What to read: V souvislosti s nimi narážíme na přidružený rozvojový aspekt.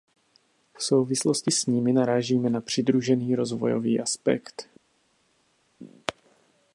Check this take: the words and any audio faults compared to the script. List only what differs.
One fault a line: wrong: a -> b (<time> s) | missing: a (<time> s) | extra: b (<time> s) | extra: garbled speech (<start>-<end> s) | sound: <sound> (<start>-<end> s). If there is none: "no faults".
no faults